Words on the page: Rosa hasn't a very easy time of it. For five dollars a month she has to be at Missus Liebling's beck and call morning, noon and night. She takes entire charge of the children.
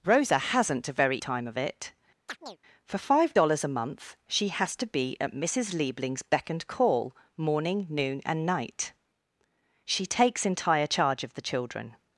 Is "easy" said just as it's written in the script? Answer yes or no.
no